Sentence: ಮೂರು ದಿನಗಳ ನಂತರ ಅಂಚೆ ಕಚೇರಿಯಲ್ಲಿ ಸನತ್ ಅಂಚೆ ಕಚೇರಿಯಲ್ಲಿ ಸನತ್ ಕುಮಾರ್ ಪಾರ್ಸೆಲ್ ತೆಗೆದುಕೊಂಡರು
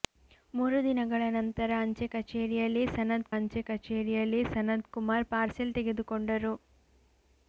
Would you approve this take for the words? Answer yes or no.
yes